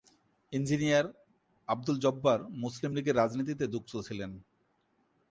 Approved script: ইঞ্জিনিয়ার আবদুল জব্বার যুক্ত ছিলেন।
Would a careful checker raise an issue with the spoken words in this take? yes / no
yes